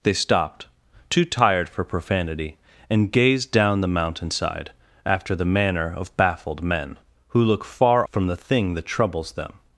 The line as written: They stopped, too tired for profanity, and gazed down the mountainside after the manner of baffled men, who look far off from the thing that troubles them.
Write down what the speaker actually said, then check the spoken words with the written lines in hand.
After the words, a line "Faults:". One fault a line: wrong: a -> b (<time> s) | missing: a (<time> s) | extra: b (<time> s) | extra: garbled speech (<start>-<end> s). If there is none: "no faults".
They stopped, too tired for profanity, and gazed down the mountainside after the manner of baffled men, who look far from the thing that troubles them.
Faults:
missing: off (8.1 s)